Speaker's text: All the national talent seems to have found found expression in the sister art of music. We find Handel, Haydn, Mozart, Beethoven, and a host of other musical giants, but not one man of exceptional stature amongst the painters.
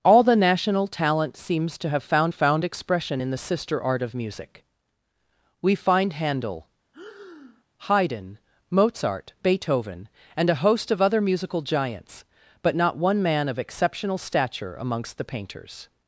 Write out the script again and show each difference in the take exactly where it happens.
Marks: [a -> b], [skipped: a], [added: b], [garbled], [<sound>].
All the national talent seems to have found found expression in the sister art of music. We find Handel, [breath] Haydn, Mozart, Beethoven, and a host of other musical giants, but not one man of exceptional stature amongst the painters.